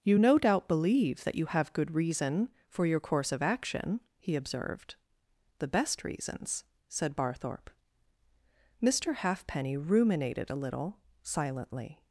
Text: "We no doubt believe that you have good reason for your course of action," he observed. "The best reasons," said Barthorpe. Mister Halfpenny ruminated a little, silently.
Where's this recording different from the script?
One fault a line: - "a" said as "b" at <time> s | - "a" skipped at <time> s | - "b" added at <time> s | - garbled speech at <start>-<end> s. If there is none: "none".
- "We" said as "You" at 0.0 s